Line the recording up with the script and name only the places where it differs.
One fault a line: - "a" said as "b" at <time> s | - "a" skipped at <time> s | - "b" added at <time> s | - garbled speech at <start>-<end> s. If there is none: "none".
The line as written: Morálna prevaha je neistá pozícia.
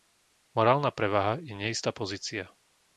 none